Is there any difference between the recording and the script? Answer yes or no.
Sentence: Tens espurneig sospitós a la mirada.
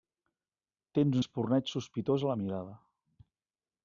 no